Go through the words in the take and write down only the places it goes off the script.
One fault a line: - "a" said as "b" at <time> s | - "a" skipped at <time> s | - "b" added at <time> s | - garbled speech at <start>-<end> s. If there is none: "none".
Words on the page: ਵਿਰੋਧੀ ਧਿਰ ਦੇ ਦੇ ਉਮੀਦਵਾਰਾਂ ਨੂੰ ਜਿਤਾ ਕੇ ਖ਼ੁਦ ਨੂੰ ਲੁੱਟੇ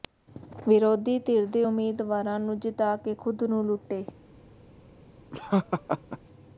- "ਦੇ" skipped at 1.6 s